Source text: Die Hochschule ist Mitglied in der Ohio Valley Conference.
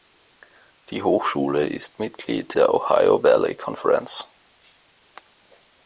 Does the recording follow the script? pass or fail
fail